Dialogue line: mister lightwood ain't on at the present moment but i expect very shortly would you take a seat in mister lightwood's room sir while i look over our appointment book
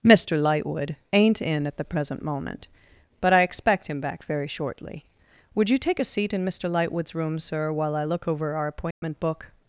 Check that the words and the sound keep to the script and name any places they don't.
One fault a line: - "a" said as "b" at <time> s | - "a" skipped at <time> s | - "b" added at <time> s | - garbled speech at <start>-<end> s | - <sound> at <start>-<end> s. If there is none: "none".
- "on" said as "in" at 1.4 s
- "him back" added at 3.9 s
- dropout at 8.9-9.0 s